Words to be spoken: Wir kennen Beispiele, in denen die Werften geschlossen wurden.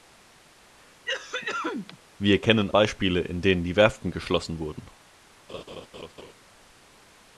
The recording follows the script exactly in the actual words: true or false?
true